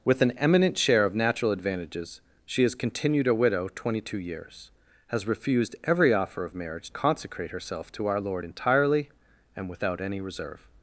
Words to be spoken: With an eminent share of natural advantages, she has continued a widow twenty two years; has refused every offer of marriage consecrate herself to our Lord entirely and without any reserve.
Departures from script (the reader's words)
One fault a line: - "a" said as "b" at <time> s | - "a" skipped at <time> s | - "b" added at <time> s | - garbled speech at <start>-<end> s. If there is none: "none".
none